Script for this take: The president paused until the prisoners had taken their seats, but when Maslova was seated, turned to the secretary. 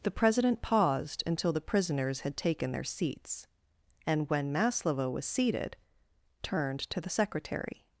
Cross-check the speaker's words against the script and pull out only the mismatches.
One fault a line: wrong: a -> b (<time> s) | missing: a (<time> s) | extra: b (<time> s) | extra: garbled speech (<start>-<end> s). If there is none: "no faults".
wrong: but -> and (4.0 s)